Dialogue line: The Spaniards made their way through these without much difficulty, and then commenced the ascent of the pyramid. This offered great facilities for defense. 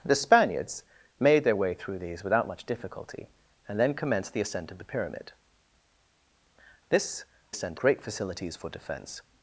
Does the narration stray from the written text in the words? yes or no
yes